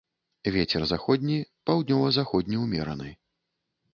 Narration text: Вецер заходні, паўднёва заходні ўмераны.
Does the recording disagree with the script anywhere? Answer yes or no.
no